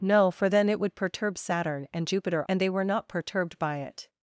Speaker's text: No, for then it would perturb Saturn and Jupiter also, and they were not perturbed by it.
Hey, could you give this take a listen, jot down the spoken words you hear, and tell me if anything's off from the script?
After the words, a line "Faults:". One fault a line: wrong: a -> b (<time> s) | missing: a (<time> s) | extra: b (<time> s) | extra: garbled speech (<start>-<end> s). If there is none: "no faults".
No, for then it would perturb Saturn and Jupiter and they were not perturbed by it.
Faults:
missing: also (2.4 s)